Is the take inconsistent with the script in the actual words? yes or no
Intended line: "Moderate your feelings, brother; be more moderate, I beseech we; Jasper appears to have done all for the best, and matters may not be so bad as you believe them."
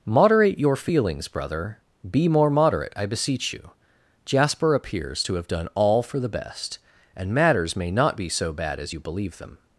yes